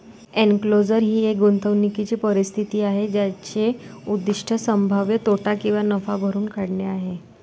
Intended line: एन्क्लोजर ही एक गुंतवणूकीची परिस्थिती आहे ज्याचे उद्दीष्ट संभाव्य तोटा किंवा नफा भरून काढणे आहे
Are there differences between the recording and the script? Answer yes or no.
no